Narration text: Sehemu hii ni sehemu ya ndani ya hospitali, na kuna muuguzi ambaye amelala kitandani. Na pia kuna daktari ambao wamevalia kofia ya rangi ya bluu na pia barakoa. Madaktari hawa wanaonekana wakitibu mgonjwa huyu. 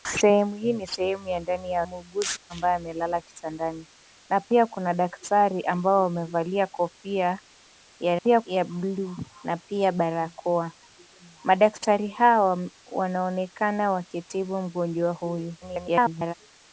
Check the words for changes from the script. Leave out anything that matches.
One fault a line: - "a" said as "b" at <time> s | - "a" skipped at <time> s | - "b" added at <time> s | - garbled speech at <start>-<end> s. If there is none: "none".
- "hospitali na kuna" skipped at 1.8 s
- "rangi" said as "pia" at 8.1 s
- garbled speech at 15.6-16.3 s